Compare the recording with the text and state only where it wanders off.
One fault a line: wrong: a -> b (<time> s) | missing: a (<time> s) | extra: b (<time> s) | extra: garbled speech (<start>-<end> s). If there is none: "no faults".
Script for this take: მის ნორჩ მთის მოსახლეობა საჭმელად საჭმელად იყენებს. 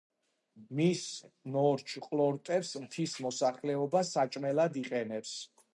extra: ყლორტებს (2.1 s)
missing: საჭმელად (4.8 s)